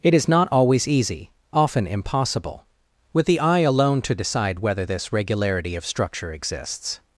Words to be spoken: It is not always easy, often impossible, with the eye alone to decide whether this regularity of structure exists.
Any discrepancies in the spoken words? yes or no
no